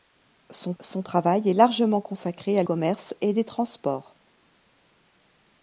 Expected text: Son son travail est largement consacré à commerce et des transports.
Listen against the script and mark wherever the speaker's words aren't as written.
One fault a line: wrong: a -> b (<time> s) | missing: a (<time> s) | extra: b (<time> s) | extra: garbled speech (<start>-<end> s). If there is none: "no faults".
no faults